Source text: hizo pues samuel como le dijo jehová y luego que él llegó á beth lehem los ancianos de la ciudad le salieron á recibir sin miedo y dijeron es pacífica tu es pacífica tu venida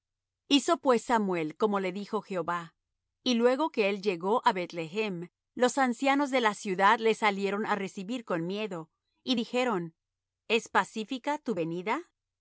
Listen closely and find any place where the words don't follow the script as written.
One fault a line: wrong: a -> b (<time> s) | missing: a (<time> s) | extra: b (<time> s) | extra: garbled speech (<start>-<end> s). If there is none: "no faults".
wrong: sin -> con (8.2 s)
missing: es pacífica tu (11.5 s)